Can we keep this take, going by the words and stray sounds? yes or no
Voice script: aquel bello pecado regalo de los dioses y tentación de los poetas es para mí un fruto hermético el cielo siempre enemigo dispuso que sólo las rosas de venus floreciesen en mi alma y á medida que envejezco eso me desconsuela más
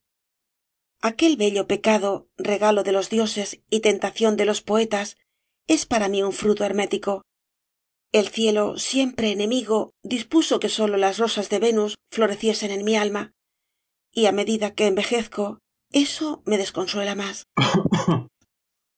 no